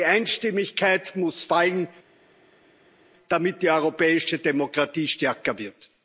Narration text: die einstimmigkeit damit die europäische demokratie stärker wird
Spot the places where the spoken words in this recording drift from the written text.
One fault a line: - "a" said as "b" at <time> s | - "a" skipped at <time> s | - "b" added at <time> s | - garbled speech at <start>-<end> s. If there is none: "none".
- "muss fallen" added at 1.1 s